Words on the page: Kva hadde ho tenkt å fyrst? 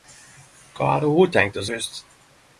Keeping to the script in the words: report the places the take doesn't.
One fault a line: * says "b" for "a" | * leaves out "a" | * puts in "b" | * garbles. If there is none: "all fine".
all fine